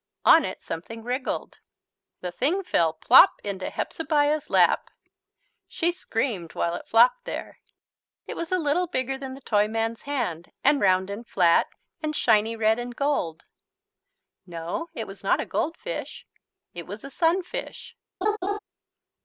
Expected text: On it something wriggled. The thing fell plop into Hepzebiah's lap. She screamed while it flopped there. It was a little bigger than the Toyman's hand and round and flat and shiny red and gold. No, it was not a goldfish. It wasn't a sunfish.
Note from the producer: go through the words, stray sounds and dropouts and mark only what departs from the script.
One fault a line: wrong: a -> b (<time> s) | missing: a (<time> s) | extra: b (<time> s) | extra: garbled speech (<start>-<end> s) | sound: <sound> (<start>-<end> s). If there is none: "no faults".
wrong: wasn't -> was (16.9 s)
sound: laugh (18.2-18.6 s)